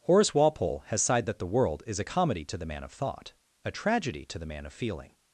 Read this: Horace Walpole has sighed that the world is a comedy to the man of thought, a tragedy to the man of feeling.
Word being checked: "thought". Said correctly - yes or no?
yes